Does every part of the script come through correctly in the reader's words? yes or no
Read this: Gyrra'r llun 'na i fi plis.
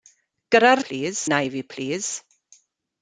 no